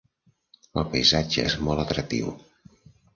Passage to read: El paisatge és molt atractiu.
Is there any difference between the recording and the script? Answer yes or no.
no